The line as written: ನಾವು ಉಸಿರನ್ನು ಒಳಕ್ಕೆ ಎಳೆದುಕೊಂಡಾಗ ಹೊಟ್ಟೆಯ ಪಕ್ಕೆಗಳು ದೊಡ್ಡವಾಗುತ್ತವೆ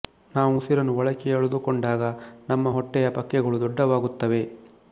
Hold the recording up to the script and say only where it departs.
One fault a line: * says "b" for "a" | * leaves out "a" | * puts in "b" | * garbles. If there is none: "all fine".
* puts in "ನಮ್ಮ"